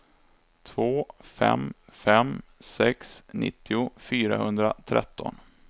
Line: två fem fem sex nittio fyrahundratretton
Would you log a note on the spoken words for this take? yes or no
no